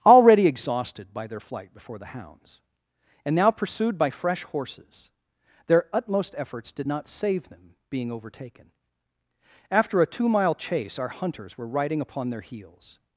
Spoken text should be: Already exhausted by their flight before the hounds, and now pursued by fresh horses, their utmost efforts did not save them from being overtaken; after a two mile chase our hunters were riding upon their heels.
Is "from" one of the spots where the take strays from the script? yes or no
yes